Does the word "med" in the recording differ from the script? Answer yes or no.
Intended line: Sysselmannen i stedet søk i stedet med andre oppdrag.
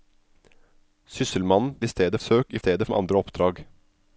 no